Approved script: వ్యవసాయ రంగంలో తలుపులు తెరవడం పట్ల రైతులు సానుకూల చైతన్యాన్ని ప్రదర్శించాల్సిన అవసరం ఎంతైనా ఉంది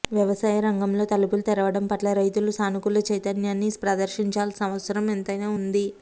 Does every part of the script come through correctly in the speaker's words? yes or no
yes